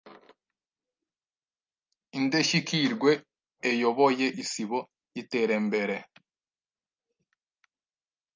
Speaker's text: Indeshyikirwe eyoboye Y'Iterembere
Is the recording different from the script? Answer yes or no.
yes